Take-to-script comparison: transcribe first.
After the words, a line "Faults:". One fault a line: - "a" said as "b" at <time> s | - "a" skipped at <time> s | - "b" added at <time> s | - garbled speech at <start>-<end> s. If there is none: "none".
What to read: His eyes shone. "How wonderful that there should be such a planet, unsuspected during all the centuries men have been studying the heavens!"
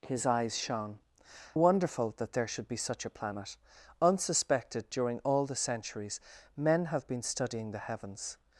His eyes shone. "Wonderful that there should be such a planet, unsuspected during all the centuries men have been studying the heavens!"
Faults:
- "How" skipped at 1.0 s